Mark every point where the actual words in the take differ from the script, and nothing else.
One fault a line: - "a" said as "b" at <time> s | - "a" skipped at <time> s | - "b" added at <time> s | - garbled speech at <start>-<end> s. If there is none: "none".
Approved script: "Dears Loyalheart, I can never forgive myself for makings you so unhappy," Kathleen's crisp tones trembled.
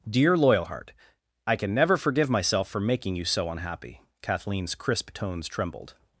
- "Dears" said as "Dear" at 0.1 s
- "makings" said as "making" at 2.8 s